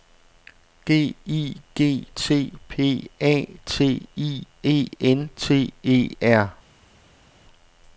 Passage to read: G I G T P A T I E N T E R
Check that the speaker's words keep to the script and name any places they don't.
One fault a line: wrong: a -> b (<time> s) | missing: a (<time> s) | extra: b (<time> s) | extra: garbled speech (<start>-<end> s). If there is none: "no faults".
no faults